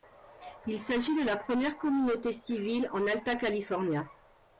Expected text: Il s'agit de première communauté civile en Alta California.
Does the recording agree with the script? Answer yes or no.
no